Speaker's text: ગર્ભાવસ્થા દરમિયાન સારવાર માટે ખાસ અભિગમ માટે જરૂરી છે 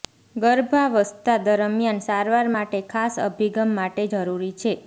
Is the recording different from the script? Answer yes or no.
no